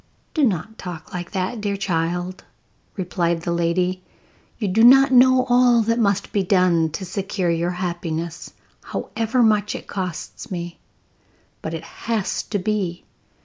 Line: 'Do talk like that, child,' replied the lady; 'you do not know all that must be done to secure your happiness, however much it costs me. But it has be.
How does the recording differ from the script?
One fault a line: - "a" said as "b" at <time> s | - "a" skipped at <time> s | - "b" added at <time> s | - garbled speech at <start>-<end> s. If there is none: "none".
- "not" added at 0.4 s
- "dear" added at 1.6 s
- "to" added at 12.4 s